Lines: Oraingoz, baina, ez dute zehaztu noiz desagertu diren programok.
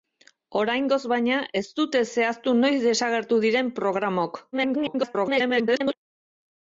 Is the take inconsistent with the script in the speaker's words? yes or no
yes